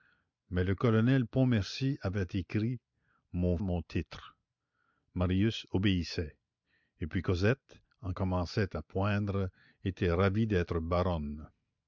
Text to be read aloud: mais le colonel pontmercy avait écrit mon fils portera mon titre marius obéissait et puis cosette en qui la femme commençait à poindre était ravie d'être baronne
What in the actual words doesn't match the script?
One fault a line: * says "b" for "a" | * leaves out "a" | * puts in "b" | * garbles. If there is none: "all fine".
* leaves out "fils portera"
* leaves out "qui la femme"